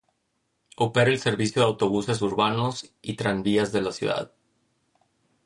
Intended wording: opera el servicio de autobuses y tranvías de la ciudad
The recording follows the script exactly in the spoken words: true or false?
false